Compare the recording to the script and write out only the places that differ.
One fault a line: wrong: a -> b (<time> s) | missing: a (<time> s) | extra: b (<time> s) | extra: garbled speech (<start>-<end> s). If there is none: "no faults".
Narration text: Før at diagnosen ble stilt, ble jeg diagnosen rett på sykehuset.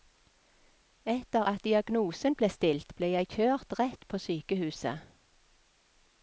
wrong: Før -> Etter (1.1 s)
wrong: diagnosen -> kjørt (3.3 s)